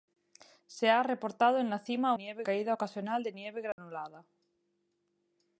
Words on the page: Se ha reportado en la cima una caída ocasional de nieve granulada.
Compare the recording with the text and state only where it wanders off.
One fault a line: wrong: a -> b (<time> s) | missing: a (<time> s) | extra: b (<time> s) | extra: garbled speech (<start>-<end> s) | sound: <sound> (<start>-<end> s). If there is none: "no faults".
wrong: una -> nieve (2.1 s)
sound: dropout (3.7-3.8 s)